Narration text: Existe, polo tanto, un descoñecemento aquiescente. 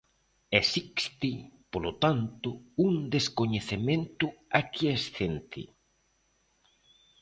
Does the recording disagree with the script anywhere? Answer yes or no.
no